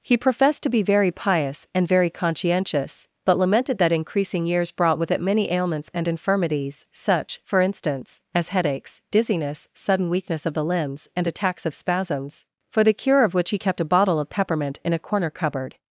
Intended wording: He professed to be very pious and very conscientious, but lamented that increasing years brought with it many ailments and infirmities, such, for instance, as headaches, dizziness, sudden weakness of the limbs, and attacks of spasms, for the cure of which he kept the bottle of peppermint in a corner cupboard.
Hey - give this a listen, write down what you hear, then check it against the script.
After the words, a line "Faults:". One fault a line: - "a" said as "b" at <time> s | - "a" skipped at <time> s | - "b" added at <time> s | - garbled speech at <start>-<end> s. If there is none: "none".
He professed to be very pious and very conscientious, but lamented that increasing years brought with it many ailments and infirmities, such, for instance, as headaches, dizziness, sudden weakness of the limbs, and attacks of spasms, for the cure of which he kept a bottle of peppermint in a corner cupboard.
Faults:
- "the" said as "a" at 13.8 s